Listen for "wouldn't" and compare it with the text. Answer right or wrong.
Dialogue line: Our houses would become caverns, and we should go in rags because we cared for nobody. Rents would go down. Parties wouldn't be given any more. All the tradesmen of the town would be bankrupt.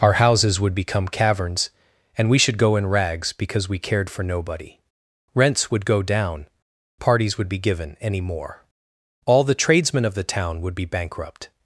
wrong